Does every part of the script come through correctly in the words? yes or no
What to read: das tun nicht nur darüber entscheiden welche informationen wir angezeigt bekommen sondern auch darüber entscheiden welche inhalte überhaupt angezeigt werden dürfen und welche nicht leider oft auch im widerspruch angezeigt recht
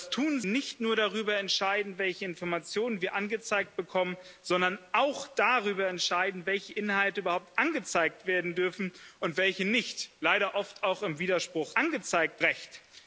yes